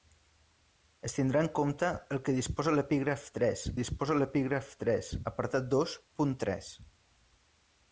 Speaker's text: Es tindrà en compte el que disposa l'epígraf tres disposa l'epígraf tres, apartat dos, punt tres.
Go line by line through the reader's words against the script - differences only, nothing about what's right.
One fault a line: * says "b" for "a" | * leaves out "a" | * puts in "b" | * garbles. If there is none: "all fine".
all fine